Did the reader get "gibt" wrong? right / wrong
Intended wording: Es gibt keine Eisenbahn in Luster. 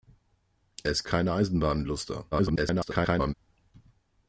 wrong